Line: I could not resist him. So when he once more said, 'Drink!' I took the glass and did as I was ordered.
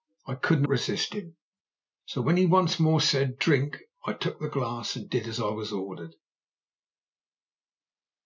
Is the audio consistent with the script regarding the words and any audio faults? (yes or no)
no